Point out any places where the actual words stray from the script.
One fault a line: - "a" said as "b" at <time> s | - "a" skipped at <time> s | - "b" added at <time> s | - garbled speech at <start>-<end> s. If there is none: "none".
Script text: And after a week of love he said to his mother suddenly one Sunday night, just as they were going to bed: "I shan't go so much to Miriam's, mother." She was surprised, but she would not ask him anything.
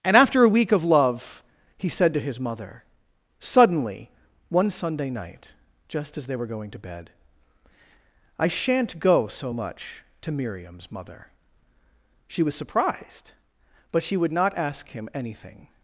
none